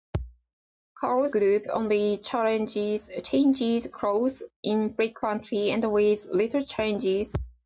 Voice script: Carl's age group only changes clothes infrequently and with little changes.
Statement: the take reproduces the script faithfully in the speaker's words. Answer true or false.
false